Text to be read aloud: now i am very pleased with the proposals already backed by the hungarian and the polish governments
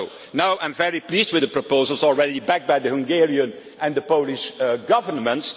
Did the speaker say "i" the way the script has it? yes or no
yes